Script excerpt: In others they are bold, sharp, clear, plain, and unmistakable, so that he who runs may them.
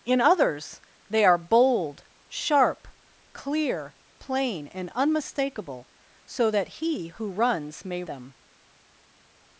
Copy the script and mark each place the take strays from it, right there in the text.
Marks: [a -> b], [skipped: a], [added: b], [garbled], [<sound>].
In others they are bold, sharp, clear, plain, and unmistakable, so that he who runs may them.